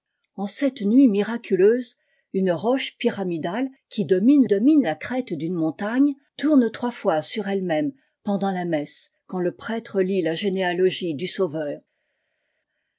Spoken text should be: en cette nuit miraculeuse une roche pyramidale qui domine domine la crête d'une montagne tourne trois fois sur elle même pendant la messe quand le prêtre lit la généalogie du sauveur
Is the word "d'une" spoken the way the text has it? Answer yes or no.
yes